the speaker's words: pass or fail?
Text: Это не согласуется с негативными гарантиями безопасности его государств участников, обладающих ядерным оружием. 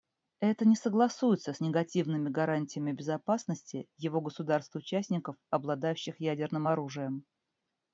pass